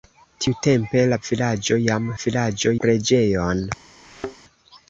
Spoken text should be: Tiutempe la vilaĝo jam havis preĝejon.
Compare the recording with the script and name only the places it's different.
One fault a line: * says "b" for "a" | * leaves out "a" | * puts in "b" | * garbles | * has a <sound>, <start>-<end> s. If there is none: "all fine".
* says "vilaĝo" for "havis"
* has a thud, 4.0-4.4 s